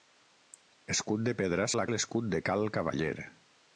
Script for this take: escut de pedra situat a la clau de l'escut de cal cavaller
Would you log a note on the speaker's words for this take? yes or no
yes